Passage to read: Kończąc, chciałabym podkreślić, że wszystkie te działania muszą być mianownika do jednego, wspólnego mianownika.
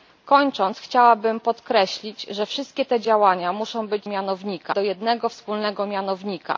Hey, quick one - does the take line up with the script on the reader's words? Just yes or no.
yes